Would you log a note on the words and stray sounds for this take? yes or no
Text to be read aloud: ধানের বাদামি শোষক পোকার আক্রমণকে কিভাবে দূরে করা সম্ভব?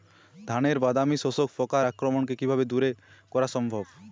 no